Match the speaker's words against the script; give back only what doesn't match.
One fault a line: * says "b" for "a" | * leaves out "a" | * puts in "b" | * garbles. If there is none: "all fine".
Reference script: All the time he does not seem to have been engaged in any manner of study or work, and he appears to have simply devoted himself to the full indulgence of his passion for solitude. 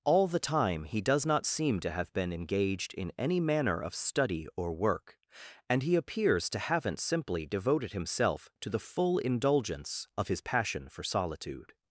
* says "haven't" for "have"